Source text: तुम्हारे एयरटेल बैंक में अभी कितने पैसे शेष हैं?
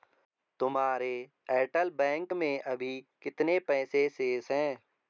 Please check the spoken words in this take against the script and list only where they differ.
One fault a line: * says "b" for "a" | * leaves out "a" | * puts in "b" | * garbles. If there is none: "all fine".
all fine